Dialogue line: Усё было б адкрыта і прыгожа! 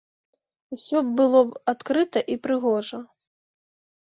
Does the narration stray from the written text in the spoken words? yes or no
no